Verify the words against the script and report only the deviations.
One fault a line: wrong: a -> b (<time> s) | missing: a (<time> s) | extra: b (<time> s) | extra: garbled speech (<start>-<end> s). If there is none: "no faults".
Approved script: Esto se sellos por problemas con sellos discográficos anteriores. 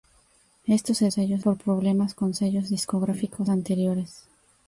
no faults